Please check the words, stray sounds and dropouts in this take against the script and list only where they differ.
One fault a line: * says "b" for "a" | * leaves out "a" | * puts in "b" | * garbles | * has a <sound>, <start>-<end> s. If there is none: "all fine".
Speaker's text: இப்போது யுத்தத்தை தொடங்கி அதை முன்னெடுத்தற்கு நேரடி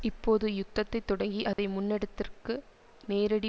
* has a dropout, 1.5-1.6 s